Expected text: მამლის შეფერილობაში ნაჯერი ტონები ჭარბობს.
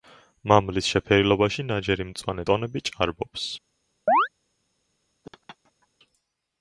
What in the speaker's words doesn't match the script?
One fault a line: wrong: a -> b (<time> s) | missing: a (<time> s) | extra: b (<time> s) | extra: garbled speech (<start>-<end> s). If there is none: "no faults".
extra: მწვანე (2.1 s)